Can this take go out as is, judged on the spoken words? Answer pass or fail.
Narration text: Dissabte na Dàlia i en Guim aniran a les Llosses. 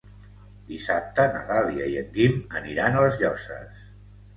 pass